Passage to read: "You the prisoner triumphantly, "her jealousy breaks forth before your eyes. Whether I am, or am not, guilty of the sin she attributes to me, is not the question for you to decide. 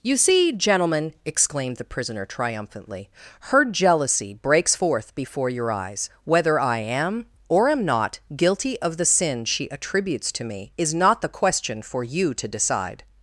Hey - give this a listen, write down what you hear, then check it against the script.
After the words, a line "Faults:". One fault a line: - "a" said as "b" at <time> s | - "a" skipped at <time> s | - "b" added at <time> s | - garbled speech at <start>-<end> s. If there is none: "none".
"You see, gentlemen," exclaimed the prisoner triumphantly, "her jealousy breaks forth before your eyes. Whether I am, or am not, guilty of the sin she attributes to me, is not the question for you to decide.
Faults:
- "see gentlemen exclaimed" added at 0.2 s